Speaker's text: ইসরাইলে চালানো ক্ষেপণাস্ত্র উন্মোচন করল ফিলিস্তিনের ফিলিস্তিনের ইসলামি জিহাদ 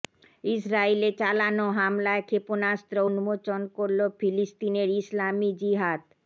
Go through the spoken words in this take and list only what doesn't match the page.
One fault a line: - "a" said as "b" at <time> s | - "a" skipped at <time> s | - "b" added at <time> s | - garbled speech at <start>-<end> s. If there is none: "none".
- "হামলায়" added at 1.8 s
- "ফিলিস্তিনের" skipped at 4.9 s